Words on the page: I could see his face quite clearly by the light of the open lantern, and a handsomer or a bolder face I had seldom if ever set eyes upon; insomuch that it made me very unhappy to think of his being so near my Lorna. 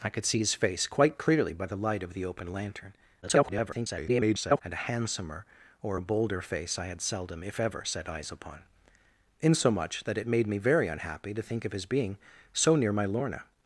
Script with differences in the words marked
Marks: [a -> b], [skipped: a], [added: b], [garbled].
I could see his face quite clearly by the light of the open lantern, [garbled] and a handsomer or a bolder face I had seldom if ever set eyes upon; insomuch that it made me very unhappy to think of his being so near my Lorna.